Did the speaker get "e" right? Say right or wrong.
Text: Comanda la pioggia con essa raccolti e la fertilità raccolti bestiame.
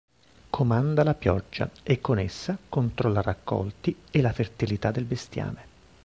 right